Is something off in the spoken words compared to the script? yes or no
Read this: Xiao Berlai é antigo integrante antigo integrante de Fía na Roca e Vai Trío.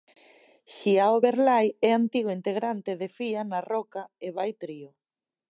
yes